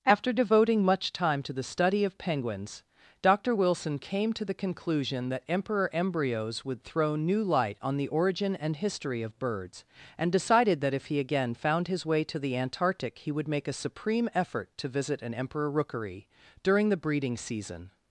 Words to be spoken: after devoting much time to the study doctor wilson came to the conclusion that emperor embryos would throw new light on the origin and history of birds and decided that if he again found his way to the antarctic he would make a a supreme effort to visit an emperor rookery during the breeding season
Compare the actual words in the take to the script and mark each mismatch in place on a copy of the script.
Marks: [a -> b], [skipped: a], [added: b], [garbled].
after devoting much time to the study [added: of penguins] doctor wilson came to the conclusion that emperor embryos would throw new light on the origin and history of birds and decided that if he again found his way to the antarctic he would make a [skipped: a] supreme effort to visit an emperor rookery during the breeding season